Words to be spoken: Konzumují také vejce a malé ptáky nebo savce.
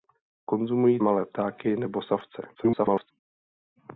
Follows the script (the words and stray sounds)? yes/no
no